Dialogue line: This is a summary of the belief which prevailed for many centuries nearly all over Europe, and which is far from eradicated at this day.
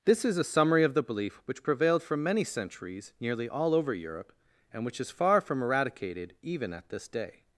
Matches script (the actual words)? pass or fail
fail